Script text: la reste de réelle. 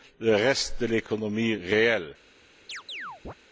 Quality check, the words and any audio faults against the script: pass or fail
fail